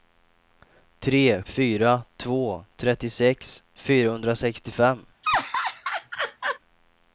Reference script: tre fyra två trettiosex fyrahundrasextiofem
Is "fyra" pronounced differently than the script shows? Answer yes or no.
no